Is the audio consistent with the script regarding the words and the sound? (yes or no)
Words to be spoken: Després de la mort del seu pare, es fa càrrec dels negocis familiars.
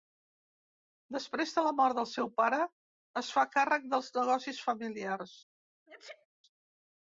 no